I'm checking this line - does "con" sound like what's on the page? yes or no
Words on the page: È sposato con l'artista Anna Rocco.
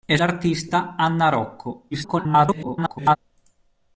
no